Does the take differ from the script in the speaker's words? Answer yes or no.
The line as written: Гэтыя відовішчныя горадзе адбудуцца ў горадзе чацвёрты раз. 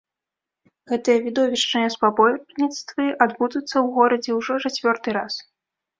yes